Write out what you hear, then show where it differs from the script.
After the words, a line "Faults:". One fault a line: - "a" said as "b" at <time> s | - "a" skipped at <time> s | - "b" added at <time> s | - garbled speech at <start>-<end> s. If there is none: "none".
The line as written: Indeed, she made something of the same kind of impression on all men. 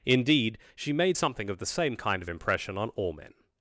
Indeed, she made something of the same kind of impression on all men.
Faults:
none